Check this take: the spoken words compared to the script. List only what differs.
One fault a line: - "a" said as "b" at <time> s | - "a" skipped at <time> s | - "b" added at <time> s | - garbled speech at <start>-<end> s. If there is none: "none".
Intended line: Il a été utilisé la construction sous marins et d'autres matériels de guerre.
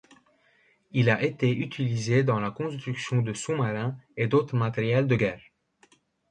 - "dans" added at 2.2 s
- "de" added at 3.2 s